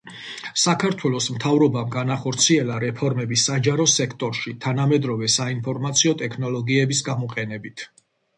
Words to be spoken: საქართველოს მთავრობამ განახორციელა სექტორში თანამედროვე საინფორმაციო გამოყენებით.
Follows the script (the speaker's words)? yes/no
no